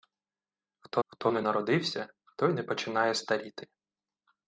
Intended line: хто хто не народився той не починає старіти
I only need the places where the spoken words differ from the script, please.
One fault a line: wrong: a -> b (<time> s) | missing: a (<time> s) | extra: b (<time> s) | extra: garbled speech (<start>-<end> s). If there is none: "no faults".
no faults